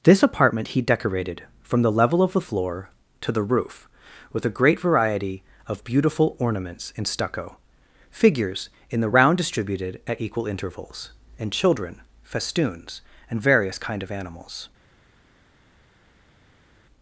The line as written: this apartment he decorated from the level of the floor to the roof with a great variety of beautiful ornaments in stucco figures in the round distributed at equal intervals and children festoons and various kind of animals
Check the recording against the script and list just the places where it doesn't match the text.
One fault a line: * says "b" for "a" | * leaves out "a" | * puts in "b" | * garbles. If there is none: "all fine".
all fine